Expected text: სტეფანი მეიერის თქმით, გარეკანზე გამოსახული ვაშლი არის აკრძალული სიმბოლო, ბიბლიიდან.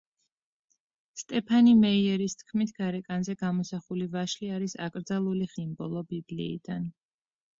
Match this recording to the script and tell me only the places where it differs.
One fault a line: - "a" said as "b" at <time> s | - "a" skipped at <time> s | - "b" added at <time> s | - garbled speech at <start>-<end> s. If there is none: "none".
none